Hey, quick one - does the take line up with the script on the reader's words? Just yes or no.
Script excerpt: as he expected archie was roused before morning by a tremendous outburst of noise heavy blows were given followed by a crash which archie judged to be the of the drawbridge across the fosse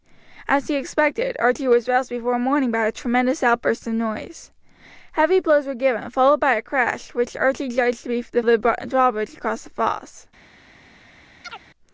yes